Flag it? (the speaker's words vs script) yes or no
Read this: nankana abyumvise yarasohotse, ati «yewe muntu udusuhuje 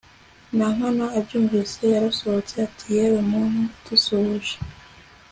no